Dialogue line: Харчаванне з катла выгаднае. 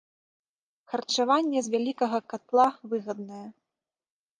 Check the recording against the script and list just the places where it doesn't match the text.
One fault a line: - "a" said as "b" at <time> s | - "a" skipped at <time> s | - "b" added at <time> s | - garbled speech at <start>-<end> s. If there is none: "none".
- "вялікага" added at 1.7 s